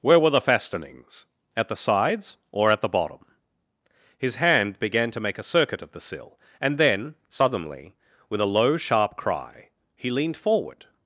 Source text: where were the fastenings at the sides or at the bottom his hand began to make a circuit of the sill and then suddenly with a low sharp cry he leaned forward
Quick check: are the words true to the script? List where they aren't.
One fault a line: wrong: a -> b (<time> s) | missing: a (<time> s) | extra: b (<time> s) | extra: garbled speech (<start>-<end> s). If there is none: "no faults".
no faults